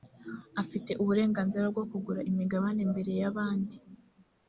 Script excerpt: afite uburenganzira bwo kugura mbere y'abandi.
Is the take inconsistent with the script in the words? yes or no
yes